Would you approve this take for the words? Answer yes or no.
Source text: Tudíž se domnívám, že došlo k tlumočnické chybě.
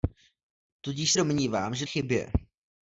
no